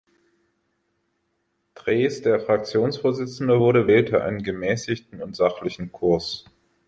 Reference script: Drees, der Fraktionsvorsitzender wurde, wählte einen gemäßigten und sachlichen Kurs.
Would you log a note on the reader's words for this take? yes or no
no